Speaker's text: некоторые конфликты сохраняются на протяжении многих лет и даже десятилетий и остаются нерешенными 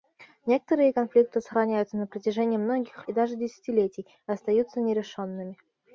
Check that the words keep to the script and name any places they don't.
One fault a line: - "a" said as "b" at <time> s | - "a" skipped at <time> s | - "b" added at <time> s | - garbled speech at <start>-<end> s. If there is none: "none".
- "лет" skipped at 3.0 s